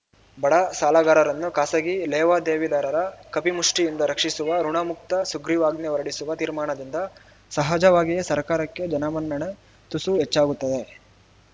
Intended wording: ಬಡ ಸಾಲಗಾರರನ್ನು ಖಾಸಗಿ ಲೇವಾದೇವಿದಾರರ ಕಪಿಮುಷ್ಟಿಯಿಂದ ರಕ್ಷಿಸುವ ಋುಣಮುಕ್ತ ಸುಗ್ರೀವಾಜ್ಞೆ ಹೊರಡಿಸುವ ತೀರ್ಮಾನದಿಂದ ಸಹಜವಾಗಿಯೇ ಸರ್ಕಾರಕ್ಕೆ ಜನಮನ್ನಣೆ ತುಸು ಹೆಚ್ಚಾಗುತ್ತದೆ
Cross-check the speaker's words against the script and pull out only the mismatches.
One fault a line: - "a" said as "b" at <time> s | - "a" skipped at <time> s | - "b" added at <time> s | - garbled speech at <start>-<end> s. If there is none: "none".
none